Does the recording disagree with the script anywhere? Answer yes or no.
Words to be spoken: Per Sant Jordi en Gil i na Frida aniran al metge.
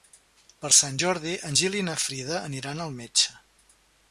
no